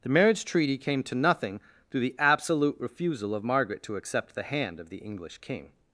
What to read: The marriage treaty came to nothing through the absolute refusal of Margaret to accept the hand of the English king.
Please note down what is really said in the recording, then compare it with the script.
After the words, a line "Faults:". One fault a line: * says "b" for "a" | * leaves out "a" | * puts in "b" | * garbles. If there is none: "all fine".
The marriage treaty came to nothing through the absolute refusal of Margaret to accept the hand of the English king.
Faults:
all fine